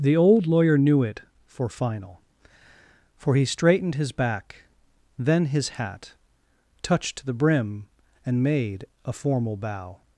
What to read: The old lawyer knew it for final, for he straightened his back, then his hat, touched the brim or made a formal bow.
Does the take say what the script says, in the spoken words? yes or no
no